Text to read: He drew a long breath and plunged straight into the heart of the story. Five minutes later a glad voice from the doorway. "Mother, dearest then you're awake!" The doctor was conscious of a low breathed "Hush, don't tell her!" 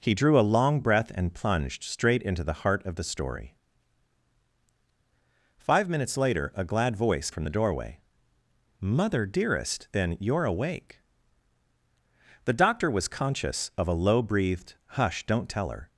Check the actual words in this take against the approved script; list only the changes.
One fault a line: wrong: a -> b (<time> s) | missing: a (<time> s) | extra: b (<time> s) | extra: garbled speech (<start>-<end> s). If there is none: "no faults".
no faults